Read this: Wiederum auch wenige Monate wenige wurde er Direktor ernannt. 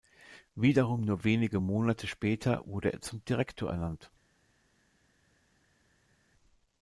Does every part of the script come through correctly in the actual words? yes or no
no